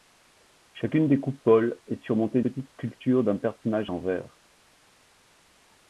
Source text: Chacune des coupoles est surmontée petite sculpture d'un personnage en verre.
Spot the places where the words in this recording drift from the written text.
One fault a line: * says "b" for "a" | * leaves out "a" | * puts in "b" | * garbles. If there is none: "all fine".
all fine